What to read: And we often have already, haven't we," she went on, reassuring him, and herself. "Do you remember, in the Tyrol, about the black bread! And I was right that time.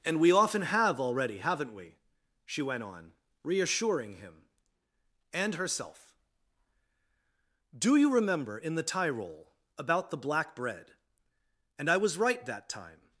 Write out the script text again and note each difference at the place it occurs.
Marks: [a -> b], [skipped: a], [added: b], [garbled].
And we often have already, haven't we," she went on, reassuring him, and herself. "Do you remember, in the Tyrol, about the black bread! And I was right that time.